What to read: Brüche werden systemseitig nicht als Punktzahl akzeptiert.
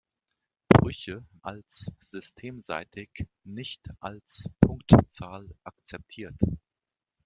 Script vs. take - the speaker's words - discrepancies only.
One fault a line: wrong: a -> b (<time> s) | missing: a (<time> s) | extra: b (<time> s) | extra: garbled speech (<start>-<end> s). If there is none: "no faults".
wrong: werden -> als (1.4 s)